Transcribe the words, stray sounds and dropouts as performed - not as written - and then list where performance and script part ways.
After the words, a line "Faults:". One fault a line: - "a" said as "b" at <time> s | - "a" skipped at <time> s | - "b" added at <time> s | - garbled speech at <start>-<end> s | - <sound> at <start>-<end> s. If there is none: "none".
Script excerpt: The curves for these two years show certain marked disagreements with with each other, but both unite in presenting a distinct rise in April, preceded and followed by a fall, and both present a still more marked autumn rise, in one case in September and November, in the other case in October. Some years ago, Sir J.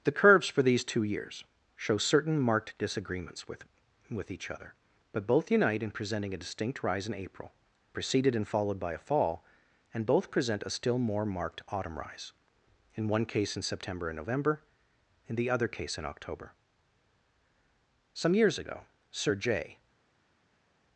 The curves for these two years show certain marked disagreements with with each other, but both unite in presenting a distinct rise in April, preceded and followed by a fall, and both present a still more marked autumn rise, in one case in September and November, in the other case in October. Some years ago, Sir J.
Faults:
none